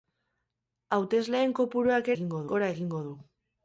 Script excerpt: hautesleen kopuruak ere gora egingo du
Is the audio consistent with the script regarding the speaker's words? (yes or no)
no